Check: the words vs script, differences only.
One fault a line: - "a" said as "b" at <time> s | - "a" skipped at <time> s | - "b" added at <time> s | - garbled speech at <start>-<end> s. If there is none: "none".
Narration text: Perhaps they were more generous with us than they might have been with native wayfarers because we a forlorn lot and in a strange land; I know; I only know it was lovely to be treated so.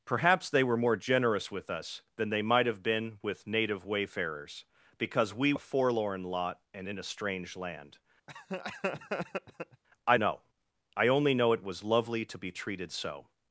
none